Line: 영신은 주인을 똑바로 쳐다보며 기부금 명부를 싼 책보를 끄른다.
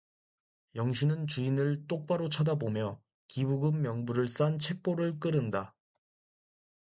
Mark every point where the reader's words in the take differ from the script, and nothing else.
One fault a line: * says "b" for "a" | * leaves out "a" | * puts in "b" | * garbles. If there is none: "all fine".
all fine